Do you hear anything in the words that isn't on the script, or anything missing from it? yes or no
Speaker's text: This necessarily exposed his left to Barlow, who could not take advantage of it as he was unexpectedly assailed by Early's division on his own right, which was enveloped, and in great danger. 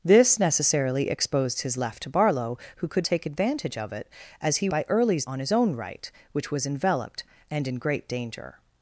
yes